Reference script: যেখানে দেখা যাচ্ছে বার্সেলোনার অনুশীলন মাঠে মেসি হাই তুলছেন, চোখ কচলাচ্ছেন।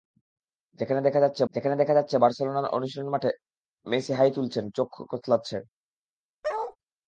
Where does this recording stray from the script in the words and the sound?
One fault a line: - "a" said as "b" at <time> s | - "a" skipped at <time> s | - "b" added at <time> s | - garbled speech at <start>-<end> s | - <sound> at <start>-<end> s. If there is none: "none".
- "যেখানে দেখা যাচ্ছে" added at 1.5 s
- bark at 6.4-6.8 s